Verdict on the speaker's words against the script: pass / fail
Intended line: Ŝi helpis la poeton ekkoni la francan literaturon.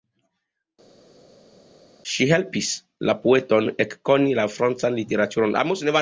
pass